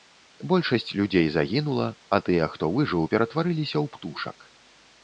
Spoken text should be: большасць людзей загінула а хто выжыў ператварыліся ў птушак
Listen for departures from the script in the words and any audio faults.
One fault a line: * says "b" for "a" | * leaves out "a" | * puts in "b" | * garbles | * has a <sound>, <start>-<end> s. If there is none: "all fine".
* puts in "тыя"